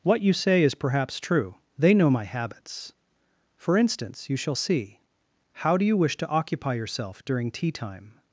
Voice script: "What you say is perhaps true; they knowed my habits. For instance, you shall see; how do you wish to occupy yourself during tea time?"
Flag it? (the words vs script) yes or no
yes